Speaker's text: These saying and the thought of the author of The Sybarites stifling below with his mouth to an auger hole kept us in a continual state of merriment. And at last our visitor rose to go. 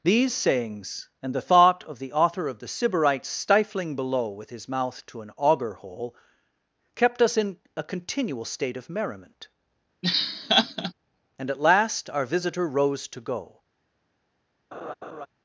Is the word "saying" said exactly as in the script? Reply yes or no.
no